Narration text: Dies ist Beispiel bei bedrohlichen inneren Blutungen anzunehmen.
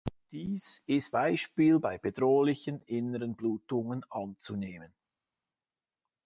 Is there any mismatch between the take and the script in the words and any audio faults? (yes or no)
no